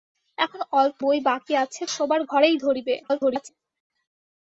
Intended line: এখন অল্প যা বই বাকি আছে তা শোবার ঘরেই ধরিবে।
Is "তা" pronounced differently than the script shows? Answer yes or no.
yes